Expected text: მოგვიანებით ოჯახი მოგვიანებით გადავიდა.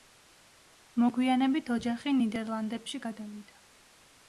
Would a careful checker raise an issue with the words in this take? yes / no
yes